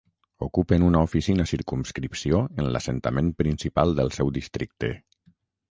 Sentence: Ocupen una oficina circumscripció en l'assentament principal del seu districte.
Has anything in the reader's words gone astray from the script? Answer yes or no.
no